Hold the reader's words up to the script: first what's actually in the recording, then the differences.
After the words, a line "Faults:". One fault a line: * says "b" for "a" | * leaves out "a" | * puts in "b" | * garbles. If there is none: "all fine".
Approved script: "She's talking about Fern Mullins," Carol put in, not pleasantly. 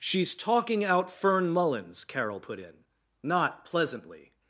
"She's talking out Fern Mullins," Carol put in, not pleasantly.
Faults:
* says "out" for "about"